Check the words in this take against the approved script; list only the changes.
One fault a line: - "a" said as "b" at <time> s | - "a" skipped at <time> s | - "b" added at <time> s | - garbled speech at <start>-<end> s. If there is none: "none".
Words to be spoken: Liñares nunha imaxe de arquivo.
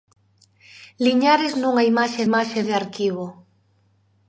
- "imaxe" added at 2.3 s